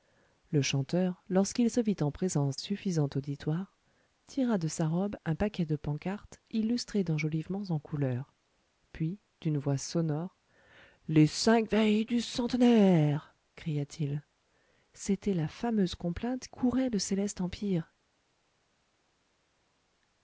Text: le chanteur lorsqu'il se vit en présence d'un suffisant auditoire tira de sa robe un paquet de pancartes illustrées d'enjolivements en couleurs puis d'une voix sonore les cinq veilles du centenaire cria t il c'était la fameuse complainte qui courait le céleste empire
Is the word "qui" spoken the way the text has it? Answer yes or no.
no